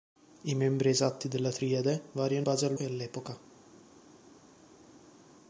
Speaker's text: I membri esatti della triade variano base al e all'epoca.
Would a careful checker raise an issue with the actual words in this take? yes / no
no